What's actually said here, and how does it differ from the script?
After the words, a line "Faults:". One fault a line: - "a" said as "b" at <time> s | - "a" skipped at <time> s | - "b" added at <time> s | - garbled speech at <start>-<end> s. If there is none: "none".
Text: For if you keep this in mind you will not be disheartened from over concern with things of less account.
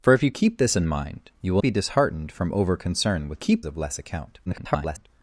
For if you keep this in mind you will be disheartened from over concern with keep of less account. [garbled]
Faults:
- "not" skipped at 1.6 s
- "things" said as "keep" at 3.4 s
- garbled speech at 4.5-5.1 s